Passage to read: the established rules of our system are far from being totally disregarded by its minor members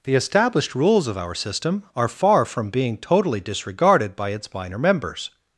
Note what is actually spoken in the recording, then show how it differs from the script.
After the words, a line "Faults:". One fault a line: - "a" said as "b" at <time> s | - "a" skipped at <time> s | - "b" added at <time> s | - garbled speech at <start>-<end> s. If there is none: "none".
the established rules of our system are far from being totally disregarded by its minor members
Faults:
none